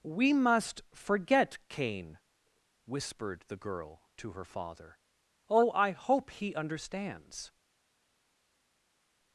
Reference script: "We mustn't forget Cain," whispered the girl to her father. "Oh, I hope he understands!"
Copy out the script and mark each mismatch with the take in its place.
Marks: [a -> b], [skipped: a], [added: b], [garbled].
"We [mustn't -> must] forget Cain," whispered the girl to her father. "Oh, I hope he understands!"